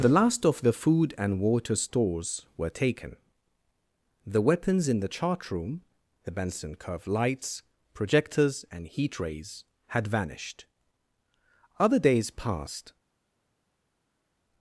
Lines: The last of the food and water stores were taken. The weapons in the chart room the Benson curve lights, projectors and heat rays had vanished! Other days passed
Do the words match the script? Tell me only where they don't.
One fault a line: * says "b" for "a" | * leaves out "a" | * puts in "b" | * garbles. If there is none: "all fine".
all fine